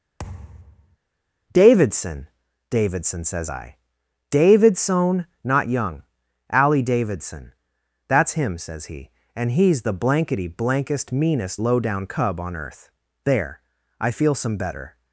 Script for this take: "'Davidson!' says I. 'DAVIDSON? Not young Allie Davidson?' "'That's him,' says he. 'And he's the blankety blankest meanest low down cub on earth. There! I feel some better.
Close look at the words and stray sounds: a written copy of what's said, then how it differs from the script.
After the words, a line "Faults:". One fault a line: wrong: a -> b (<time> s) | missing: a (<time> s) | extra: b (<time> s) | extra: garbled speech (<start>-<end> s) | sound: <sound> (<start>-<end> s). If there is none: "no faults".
"'Davidson!' davidson says I. 'DAVIDSON? Not young Allie Davidson?' "'That's him,' says he. 'And he's the blankety blankest meanest low down cub on earth. There! I feel some better.
Faults:
sound: thud (0.2-1.0 s)
extra: davidson (2.7 s)